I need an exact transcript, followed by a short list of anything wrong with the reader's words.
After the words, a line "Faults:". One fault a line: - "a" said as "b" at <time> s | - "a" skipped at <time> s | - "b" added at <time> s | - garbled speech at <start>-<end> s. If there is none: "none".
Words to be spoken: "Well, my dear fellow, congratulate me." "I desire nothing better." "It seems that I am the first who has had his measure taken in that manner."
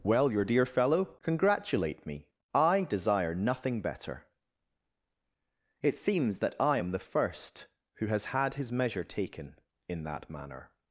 "Well, your dear fellow, congratulate me." "I desire nothing better." "It seems that I am the first who has had his measure taken in that manner."
Faults:
- "my" said as "your" at 0.3 s